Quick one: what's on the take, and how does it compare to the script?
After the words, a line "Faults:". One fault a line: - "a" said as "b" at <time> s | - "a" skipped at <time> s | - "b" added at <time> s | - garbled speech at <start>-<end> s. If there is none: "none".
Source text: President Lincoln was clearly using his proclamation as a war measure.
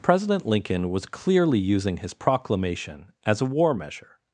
President Lincoln was clearly using his proclamation as a war measure.
Faults:
none